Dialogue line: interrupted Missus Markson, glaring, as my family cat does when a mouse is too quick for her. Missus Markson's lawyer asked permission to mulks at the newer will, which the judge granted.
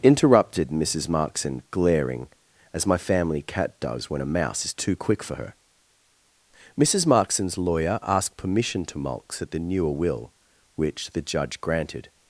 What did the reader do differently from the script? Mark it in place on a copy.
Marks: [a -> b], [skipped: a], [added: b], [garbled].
interrupted Missus Markson, glaring, as my family cat does when a mouse is too quick for her. Missus Markson's lawyer asked permission to mulks at the newer will, which the judge granted.